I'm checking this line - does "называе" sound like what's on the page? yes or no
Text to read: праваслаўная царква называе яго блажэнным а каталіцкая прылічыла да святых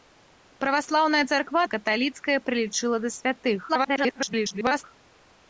no